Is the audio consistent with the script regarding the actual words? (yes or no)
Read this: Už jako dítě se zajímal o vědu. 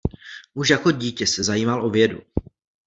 yes